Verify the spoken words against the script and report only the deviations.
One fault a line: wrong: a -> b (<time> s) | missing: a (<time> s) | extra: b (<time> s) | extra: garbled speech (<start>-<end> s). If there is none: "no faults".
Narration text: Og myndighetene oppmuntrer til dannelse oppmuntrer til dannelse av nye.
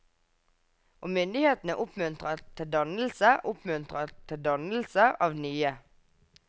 no faults